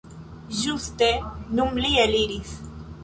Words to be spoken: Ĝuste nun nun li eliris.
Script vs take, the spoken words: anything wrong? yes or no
yes